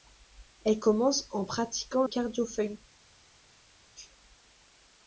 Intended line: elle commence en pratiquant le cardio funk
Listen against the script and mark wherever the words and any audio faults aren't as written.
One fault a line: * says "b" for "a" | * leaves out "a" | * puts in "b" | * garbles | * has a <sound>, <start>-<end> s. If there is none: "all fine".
* leaves out "le"